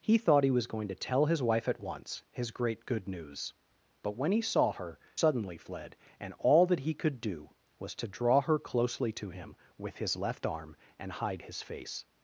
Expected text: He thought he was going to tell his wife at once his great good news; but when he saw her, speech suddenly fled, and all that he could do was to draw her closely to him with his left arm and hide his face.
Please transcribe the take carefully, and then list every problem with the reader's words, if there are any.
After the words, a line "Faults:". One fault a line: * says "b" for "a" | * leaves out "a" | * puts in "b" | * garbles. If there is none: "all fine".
He thought he was going to tell his wife at once his great good news; but when he saw her, suddenly fled, and all that he could do was to draw her closely to him with his left arm and hide his face.
Faults:
* leaves out "speech"